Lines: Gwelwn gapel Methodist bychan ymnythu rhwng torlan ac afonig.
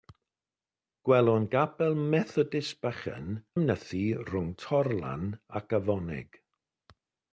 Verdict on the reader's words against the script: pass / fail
pass